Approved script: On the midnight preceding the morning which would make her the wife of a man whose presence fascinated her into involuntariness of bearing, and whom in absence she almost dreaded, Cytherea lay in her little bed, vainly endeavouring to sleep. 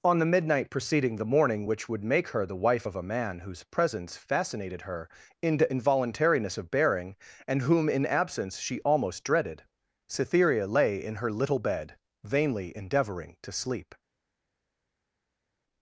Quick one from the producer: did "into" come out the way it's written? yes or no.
yes